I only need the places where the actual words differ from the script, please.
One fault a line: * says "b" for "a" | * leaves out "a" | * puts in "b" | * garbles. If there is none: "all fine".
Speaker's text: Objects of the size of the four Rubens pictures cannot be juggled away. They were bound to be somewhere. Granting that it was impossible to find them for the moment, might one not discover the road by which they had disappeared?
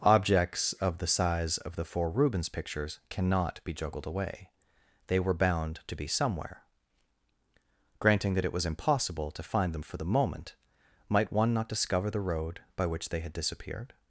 all fine